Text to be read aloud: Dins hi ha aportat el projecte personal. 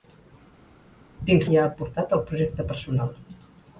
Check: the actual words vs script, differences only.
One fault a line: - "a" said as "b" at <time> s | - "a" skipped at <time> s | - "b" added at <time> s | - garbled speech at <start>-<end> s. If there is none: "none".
none